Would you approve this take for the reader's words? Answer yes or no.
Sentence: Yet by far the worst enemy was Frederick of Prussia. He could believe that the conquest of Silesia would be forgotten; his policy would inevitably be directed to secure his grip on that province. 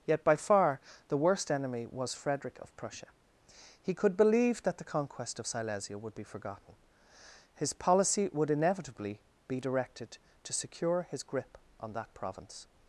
yes